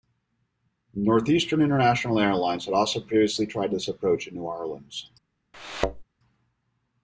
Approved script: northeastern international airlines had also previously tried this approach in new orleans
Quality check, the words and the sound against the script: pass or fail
fail